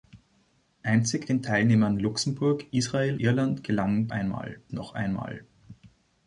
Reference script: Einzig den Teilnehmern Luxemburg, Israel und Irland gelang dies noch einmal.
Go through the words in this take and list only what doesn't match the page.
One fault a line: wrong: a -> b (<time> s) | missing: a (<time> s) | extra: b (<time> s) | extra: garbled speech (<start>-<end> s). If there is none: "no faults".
missing: und (3.2 s)
wrong: dies -> einmal (4.1 s)